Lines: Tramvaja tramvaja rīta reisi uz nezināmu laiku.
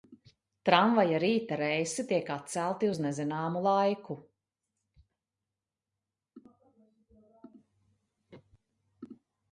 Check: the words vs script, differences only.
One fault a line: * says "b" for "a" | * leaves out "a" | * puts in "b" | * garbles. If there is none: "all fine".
* leaves out "tramvaja"
* puts in "tiek atcelti"